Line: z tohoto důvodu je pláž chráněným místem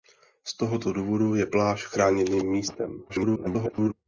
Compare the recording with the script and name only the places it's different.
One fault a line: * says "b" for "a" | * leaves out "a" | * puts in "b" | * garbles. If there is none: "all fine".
* garbles